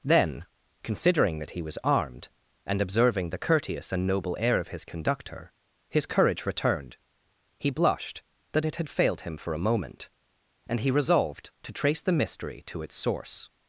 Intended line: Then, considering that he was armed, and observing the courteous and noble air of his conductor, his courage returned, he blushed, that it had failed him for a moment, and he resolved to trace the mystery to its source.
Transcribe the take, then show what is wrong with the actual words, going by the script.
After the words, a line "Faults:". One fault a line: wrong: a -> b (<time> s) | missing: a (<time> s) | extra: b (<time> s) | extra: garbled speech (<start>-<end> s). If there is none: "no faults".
Then, considering that he was armed, and observing the courteous and noble air of his conductor, his courage returned, he blushed, that it had failed him for a moment, and he resolved to trace the mystery to its source.
Faults:
no faults